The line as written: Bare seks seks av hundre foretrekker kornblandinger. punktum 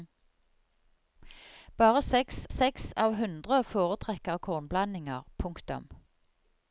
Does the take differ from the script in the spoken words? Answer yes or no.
no